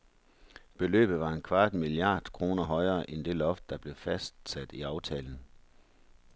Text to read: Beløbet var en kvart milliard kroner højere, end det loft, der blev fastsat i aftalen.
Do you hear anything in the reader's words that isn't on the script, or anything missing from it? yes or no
no